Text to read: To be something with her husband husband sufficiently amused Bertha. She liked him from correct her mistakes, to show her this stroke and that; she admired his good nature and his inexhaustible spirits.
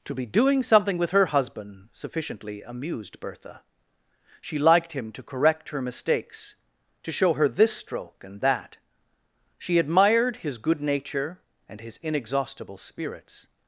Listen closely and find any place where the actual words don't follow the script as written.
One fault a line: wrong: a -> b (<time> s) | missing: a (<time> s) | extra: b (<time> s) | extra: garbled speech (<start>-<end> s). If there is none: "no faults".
extra: doing (0.2 s)
missing: husband (1.9 s)
wrong: from -> to (5.1 s)